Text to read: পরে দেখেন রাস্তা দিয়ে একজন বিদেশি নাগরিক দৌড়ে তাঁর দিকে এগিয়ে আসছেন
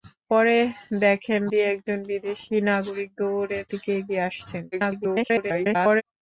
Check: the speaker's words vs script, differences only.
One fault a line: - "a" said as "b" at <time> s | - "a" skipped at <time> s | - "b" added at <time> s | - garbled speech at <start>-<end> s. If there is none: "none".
- "রাস্তা" skipped at 1.4 s
- "তাঁর" skipped at 3.6 s
- garbled speech at 4.7-6.0 s